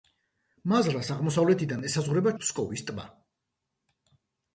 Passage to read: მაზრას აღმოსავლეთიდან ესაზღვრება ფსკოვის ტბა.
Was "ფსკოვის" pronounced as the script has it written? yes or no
yes